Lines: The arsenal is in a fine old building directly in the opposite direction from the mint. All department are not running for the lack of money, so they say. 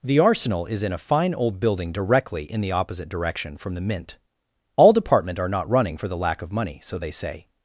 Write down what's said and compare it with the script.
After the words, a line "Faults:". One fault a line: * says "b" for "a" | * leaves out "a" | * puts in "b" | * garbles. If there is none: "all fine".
The arsenal is in a fine old building directly in the opposite direction from the mint. All department are not running for the lack of money, so they say.
Faults:
all fine